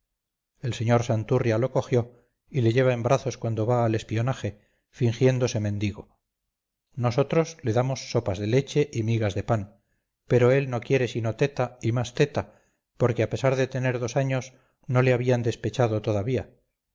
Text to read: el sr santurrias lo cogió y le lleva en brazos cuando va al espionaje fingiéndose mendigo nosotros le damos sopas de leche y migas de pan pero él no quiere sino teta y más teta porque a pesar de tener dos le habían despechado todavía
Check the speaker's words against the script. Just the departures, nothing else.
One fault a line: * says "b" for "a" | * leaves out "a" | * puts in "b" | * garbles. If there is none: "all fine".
* puts in "años no"